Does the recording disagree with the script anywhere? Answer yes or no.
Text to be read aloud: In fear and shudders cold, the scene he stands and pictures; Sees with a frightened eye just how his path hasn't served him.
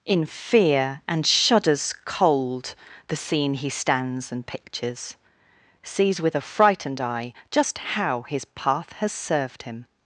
yes